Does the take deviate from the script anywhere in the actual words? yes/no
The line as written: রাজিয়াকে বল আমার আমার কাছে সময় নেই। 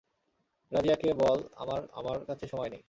no